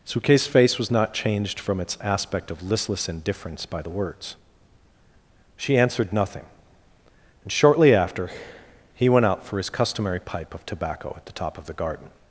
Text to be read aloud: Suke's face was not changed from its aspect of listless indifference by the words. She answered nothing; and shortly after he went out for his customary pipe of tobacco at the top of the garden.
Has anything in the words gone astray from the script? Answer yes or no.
no